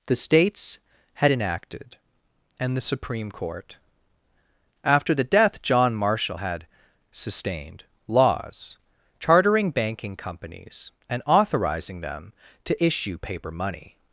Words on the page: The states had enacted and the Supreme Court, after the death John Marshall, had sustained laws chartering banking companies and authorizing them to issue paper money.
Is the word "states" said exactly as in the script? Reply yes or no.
yes